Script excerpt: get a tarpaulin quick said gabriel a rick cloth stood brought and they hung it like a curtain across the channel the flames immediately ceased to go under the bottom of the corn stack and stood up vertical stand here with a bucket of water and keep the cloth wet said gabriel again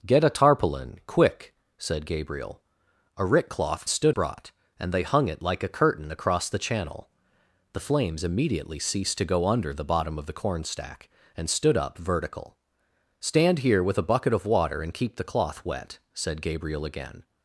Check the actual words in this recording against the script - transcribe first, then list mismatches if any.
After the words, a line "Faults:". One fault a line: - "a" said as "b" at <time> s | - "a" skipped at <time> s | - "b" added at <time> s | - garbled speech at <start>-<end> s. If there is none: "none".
get a tarpaulin quick said gabriel a rick cloth stood brought and they hung it like a curtain across the channel the flames immediately ceased to go under the bottom of the corn stack and stood up vertical stand here with a bucket of water and keep the cloth wet said gabriel again
Faults:
none